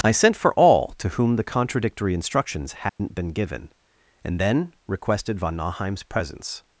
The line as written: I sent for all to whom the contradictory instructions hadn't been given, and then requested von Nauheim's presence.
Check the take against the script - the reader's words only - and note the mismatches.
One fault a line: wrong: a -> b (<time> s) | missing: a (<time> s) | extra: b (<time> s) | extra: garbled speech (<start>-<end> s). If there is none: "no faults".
no faults